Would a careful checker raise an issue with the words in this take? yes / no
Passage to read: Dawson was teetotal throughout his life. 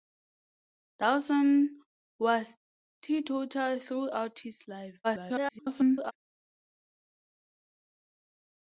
yes